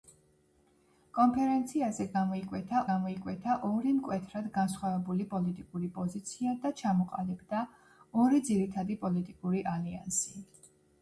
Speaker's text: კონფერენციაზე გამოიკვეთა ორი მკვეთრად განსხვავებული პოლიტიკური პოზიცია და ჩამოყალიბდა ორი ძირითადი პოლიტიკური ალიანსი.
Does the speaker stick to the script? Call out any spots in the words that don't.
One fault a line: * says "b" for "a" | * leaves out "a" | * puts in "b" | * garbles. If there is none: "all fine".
* puts in "გამოიკვეთა"